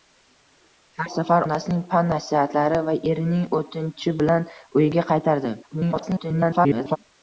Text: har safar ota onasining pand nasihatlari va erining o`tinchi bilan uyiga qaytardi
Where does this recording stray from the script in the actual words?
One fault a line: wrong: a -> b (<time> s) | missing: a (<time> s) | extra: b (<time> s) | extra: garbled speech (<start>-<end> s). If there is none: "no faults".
missing: ota (1.4 s)
extra: garbled speech (5.6-7.0 s)